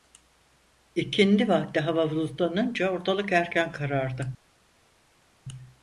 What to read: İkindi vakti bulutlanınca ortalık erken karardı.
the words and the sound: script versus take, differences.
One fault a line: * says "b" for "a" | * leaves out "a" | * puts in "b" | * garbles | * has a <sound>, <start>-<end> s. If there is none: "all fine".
* puts in "hava"